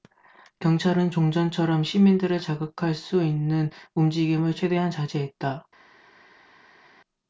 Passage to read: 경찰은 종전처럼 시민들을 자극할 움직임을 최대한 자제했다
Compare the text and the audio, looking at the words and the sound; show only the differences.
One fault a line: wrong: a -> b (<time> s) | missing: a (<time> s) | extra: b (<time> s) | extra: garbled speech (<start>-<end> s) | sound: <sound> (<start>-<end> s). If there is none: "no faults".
extra: 수 있는 (2.9 s)